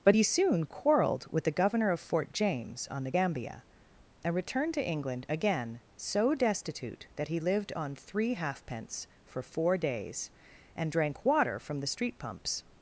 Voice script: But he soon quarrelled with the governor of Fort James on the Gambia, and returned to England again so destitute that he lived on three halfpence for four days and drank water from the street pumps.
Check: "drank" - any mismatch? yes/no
no